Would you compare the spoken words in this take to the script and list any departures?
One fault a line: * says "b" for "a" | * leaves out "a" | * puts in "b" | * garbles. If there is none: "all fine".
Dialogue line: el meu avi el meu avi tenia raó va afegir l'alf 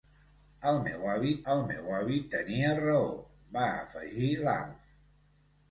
all fine